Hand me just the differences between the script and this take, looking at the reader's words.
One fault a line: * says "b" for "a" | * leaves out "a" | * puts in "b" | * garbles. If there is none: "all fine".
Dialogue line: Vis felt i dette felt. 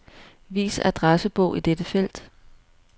* says "adressebog" for "felt"